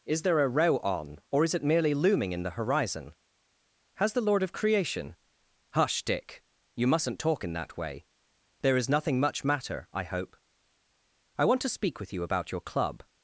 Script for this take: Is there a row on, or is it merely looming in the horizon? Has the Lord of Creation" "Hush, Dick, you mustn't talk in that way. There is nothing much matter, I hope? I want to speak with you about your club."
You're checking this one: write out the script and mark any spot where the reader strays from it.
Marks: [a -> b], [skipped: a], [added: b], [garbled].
Is there a row on, or is it merely looming in the horizon? Has the Lord of Creation" "Hush, Dick, you mustn't talk in that way. There is nothing much matter, I hope? I want to speak with you about your club."